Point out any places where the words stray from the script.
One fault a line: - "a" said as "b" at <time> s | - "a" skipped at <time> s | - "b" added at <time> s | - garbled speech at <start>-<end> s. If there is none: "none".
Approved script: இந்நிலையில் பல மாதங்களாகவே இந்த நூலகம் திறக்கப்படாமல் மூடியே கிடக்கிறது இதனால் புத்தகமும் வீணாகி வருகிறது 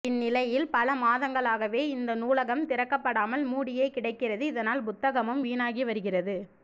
none